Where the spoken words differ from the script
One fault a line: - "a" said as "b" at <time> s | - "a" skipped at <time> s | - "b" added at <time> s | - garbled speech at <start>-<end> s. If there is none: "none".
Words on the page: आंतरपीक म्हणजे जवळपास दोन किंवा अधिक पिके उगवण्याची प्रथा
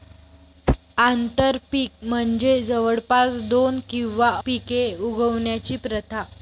- "अधिक" skipped at 4.3 s